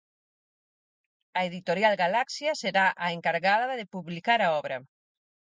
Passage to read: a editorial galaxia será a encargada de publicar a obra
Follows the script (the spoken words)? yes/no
yes